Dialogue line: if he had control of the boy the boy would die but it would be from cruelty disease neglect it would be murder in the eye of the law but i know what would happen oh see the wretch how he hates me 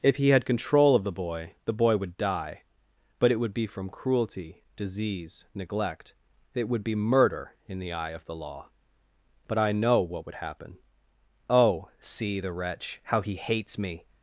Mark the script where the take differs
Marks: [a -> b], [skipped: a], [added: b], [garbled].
if he had control of the boy the boy would die but it would be from cruelty disease neglect it would be murder in the eye of the law but i know what would happen oh see the wretch how he hates me